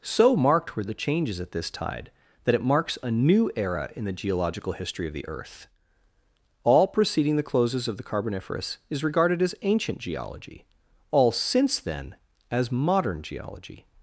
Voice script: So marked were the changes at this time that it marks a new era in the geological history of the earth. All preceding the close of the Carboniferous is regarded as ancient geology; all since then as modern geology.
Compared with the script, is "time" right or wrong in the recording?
wrong